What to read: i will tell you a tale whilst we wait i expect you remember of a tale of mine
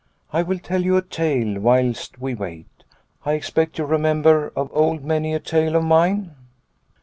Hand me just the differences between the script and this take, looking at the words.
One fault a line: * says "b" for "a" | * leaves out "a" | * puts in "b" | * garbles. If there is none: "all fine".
* puts in "old many"